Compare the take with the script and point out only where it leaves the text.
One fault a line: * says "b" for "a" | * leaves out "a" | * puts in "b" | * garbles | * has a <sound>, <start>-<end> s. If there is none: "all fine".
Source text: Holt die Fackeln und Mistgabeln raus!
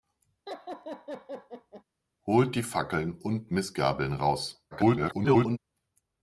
* has a laugh, 0.5-1.8 s
* garbles